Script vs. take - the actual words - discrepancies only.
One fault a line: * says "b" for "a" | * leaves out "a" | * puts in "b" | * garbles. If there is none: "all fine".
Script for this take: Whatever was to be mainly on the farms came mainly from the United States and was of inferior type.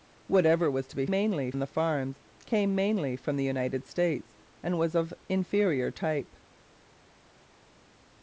all fine